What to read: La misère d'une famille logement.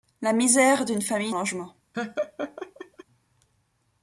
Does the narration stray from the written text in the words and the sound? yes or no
yes